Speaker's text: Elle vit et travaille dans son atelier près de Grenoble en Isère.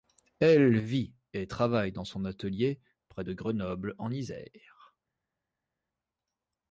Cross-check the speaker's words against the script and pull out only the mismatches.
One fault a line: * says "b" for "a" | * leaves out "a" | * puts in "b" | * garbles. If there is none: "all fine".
all fine